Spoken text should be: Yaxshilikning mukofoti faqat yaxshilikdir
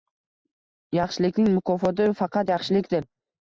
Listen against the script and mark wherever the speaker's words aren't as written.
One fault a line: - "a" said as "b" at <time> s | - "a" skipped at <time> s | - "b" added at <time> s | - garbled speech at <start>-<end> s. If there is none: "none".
none